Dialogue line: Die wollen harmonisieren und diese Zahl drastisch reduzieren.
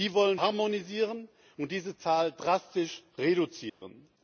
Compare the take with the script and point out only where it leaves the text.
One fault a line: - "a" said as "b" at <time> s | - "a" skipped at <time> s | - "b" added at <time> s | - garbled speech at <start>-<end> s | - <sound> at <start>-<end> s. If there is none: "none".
- dropout at 3.7-3.8 s